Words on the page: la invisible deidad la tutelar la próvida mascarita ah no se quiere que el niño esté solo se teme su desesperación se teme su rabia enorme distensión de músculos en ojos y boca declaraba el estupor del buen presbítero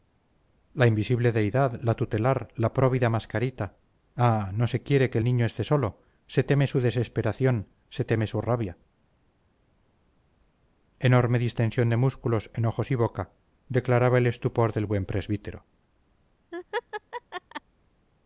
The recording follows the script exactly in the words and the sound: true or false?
false